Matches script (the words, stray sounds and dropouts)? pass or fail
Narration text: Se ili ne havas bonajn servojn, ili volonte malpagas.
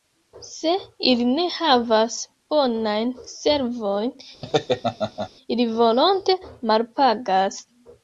fail